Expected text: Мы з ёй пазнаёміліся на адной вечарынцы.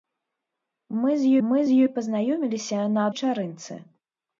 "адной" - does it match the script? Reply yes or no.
no